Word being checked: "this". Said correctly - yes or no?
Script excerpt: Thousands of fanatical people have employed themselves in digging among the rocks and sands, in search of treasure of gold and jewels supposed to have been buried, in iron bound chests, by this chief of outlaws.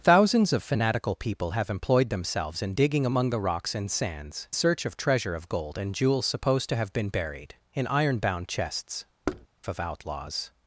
no